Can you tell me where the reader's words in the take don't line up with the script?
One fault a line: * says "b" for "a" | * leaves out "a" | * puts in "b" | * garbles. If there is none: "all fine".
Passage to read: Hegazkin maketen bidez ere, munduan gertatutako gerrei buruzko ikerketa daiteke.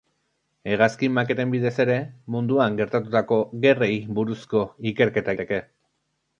all fine